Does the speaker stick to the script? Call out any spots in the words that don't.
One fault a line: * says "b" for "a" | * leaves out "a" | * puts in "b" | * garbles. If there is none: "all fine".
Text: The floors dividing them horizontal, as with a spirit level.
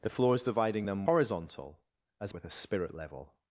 all fine